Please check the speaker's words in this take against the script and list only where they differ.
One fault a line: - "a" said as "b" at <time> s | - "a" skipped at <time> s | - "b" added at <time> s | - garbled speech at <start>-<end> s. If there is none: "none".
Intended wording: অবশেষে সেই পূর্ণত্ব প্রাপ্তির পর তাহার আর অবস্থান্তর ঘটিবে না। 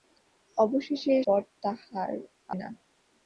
- "সেই পূর্ণত্ব প্রাপ্তির" skipped at 1.1 s
- "আর অবস্থান্তর ঘটিবে" skipped at 2.1 s